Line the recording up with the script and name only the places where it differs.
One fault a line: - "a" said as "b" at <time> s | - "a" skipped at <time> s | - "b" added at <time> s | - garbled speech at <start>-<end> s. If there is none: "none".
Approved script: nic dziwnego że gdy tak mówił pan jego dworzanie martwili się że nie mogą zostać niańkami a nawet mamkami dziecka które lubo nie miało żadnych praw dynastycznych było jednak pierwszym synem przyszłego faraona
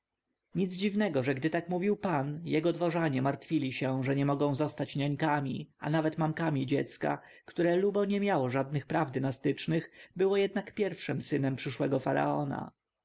none